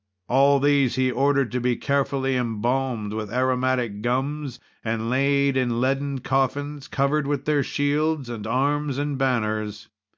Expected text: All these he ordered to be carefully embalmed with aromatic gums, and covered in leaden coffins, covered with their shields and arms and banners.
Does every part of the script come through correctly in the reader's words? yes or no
no